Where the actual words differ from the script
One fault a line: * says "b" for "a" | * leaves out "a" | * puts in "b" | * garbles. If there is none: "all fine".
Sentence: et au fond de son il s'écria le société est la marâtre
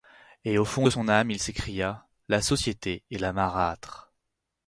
* puts in "âme"
* says "la" for "le"